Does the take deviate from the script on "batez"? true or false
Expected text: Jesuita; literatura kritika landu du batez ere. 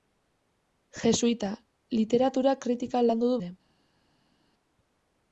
true